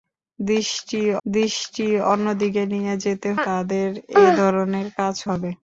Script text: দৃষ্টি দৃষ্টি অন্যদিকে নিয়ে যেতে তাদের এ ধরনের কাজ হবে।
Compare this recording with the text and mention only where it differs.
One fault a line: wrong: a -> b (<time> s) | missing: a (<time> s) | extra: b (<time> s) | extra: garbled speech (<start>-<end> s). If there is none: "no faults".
no faults